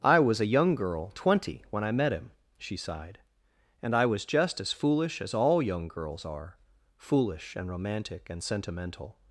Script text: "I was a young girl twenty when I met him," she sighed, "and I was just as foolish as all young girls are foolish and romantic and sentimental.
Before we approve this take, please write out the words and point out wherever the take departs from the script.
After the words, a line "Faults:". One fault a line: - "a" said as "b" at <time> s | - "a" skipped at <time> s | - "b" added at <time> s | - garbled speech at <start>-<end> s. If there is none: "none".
"I was a young girl twenty when I met him," she sighed, "and I was just as foolish as all young girls are foolish and romantic and sentimental.
Faults:
none